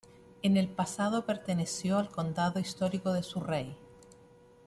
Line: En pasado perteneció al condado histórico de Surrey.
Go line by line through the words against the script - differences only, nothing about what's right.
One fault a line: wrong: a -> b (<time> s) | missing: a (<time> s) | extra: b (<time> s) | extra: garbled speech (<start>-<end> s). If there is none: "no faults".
extra: el (0.6 s)